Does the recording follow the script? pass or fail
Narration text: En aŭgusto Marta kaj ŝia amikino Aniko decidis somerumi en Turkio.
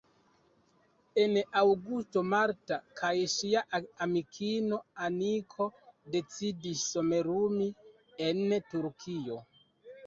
pass